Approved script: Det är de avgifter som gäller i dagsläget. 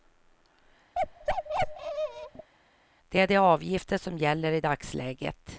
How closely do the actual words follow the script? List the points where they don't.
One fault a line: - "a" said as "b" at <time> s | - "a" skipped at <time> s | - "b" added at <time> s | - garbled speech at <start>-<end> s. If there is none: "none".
none